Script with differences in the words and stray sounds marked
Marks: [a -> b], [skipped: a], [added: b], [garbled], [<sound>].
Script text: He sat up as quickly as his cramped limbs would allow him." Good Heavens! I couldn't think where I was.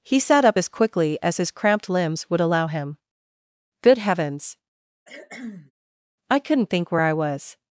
He sat up as quickly as his cramped limbs would allow him." Good Heavens! [cough] I couldn't think where I was.